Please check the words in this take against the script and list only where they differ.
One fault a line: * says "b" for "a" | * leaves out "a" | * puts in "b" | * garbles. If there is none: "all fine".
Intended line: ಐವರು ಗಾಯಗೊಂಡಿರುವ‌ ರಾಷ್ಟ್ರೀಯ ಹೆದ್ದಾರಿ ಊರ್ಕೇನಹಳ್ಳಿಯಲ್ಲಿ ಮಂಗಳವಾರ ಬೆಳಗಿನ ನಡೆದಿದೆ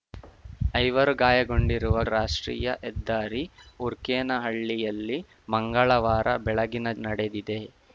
all fine